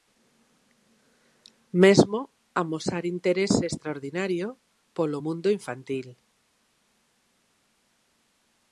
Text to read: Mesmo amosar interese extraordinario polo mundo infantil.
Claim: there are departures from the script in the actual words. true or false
false